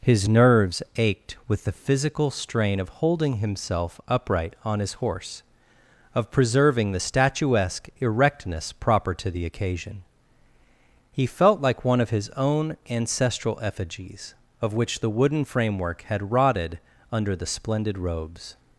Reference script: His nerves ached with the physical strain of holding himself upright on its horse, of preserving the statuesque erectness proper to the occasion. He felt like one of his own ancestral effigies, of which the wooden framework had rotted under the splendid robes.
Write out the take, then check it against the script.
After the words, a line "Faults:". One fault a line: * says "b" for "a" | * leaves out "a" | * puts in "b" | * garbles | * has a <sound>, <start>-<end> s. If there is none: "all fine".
His nerves ached with the physical strain of holding himself upright on his horse, of preserving the statuesque erectness proper to the occasion. He felt like one of his own ancestral effigies, of which the wooden framework had rotted under the splendid robes.
Faults:
* says "his" for "its"